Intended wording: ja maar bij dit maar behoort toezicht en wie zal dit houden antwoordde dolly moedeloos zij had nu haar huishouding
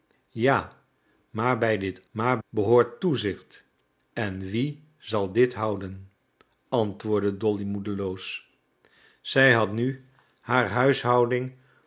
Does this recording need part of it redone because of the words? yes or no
no